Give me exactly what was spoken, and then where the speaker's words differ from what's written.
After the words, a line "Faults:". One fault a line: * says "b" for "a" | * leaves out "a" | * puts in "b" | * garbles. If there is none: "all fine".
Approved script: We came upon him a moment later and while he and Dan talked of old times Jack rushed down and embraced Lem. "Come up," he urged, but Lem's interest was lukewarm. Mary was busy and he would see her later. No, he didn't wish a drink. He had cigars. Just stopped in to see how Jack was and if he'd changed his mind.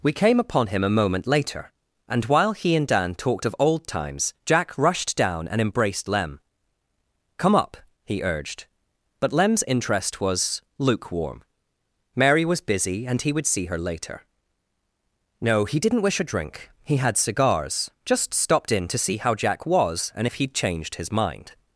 We came upon him a moment later and while he and Dan talked of old times Jack rushed down and embraced Lem. "Come up," he urged, but Lem's interest was lukewarm. Mary was busy and he would see her later. No, he didn't wish a drink. He had cigars. Just stopped in to see how Jack was and if he'd changed his mind.
Faults:
all fine